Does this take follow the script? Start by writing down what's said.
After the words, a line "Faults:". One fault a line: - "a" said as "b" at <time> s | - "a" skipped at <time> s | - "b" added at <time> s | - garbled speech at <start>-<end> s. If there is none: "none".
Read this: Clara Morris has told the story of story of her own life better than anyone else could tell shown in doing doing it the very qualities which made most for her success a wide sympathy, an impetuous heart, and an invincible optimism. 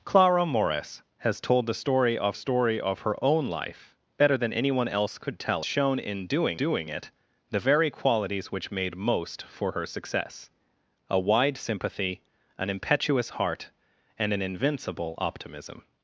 Clara Morris has told the story of story of her own life better than anyone else could tell shown in doing doing it the very qualities which made most for her success a wide sympathy, an impetuous heart, and an invincible optimism.
Faults:
none